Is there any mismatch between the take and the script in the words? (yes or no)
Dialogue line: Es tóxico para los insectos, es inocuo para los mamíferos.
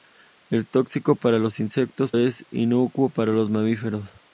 no